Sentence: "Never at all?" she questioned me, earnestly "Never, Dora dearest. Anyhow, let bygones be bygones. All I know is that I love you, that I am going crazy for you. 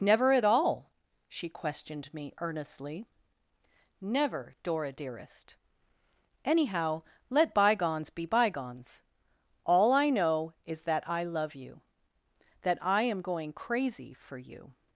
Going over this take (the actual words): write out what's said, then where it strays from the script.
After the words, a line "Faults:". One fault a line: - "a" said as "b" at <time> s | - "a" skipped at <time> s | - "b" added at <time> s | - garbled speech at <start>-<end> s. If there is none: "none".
"Never at all?" she questioned me, earnestly "Never, Dora dearest. Anyhow, let bygones be bygones. All I know is that I love you, that I am going crazy for you.
Faults:
none